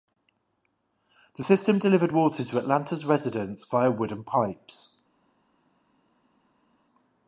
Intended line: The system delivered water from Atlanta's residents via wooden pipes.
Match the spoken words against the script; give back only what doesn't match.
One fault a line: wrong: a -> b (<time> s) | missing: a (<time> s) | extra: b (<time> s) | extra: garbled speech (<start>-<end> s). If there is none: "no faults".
wrong: from -> to (2.4 s)